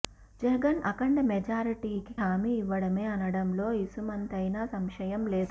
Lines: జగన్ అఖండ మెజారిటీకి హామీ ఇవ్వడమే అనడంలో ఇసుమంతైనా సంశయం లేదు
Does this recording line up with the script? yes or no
yes